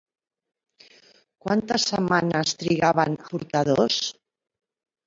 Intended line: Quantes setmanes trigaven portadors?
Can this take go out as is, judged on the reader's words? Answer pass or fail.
pass